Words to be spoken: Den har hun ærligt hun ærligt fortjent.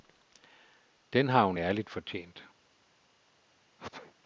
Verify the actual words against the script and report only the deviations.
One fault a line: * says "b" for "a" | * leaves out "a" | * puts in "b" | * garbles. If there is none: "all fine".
* leaves out "hun ærligt"